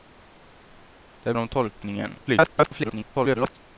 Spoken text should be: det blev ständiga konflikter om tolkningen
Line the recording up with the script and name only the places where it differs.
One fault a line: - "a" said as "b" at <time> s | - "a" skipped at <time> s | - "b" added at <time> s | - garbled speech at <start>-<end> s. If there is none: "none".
- "blev ständiga konflikter" skipped at 1.3 s
- garbled speech at 2.3-3.6 s